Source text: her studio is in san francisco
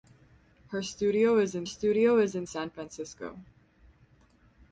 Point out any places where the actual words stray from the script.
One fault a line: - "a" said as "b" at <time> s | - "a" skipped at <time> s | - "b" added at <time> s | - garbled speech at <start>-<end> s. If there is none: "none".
- "studio is in" added at 1.6 s